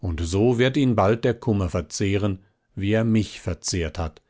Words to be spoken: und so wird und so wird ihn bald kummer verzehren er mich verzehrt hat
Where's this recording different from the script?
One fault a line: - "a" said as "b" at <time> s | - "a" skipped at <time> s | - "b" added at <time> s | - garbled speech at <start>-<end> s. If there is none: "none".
- "und so wird" skipped at 0.8 s
- "der" added at 1.2 s
- "wie" added at 2.7 s